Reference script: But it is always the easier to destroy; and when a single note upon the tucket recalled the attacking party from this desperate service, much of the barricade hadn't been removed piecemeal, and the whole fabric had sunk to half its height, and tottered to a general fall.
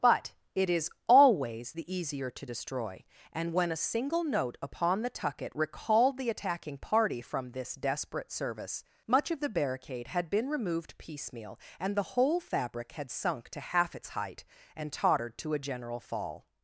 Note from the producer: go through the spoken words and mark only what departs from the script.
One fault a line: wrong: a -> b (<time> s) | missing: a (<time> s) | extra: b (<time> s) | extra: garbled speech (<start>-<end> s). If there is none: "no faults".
wrong: hadn't -> had (10.1 s)